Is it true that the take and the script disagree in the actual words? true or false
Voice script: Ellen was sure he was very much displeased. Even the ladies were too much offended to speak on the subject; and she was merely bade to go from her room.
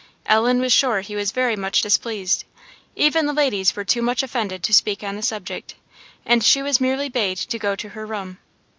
true